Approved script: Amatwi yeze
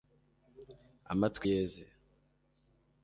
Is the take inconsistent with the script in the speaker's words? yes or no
no